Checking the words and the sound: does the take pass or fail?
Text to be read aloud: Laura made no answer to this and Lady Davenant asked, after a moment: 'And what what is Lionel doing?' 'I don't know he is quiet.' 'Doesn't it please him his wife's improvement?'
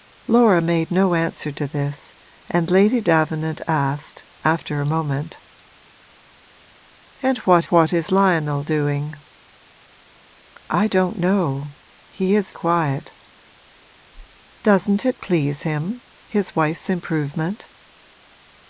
pass